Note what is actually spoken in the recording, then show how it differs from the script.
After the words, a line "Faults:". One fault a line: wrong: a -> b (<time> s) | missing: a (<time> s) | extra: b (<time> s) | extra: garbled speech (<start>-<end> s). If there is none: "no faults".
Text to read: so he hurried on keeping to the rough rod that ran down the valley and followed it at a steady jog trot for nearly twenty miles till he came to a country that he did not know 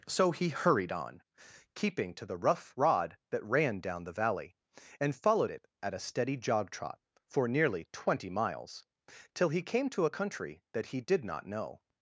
so he hurried on keeping to the rough rod that ran down the valley and followed it at a steady jog trot for nearly twenty miles till he came to a country that he did not know
Faults:
no faults